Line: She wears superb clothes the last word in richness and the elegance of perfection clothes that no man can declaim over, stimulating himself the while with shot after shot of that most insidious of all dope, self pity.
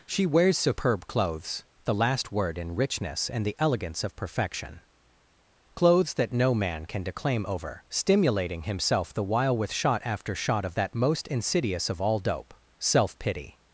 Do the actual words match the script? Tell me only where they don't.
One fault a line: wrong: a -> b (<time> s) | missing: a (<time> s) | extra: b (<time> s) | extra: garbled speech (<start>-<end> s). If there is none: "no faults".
no faults